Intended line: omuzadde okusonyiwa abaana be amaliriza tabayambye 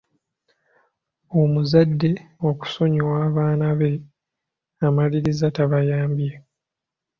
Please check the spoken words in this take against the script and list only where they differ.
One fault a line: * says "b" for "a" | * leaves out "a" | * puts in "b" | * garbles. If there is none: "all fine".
all fine